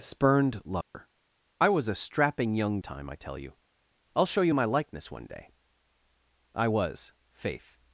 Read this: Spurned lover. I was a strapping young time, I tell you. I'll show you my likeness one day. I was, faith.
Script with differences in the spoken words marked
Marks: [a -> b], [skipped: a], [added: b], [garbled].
Spurned lover. I was a strapping young time, I tell you. I'll show you my likeness one day. I was, faith.